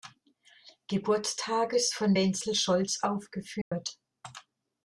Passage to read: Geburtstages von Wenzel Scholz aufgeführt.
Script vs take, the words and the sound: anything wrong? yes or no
yes